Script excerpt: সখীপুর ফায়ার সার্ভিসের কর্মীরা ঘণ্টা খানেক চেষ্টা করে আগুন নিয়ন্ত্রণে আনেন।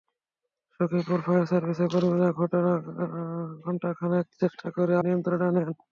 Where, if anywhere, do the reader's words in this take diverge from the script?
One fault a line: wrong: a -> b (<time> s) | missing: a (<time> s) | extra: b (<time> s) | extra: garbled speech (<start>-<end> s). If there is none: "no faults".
missing: আগুন (4.9 s)